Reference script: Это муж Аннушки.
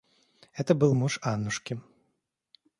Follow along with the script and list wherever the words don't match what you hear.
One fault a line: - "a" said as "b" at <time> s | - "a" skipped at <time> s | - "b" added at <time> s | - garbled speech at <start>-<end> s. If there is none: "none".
- "был" added at 0.7 s